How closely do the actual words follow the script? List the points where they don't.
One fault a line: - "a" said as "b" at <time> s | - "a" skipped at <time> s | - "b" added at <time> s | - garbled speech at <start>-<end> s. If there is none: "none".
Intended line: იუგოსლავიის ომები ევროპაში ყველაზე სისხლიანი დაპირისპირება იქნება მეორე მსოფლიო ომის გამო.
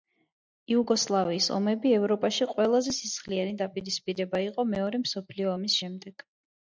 - "იქნება" said as "იყო" at 4.5 s
- "გამო" said as "შემდეგ" at 5.8 s